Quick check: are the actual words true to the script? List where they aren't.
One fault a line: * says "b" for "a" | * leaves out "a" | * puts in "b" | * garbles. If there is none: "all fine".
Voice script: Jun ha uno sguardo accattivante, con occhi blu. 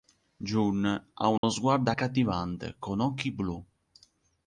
all fine